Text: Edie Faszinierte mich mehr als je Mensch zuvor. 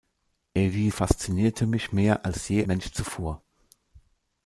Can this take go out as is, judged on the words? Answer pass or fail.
pass